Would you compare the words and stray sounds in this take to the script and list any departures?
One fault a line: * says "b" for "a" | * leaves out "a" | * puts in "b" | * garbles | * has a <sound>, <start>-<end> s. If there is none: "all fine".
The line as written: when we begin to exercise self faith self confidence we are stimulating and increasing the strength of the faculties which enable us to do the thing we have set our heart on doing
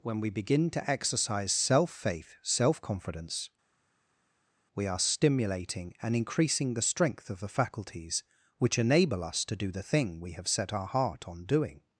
all fine